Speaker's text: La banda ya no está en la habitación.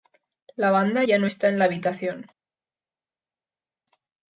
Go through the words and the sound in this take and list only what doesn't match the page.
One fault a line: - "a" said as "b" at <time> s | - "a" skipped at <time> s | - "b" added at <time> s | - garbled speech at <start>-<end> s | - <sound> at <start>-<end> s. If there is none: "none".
none